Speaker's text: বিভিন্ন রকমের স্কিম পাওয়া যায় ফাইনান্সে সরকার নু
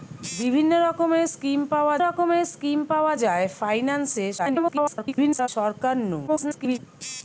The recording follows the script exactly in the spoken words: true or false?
false